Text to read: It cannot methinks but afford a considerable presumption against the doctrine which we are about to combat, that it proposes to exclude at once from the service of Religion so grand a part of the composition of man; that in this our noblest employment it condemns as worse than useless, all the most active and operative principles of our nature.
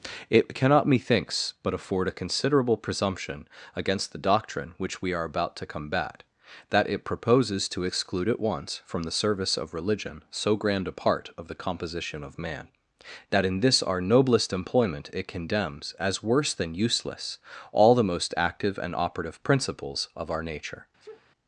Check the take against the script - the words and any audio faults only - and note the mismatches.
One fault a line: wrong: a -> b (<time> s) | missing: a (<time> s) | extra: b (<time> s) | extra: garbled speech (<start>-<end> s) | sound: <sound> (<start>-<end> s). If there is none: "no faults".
sound: sneeze (21.0-21.3 s)